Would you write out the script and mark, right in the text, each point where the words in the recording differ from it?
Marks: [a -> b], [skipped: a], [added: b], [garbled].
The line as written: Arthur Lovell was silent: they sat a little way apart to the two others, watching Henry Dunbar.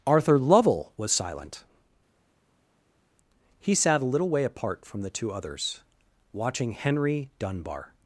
Arthur Lovell was silent: [they -> he] sat a little way apart [to -> from] the two others, watching Henry Dunbar.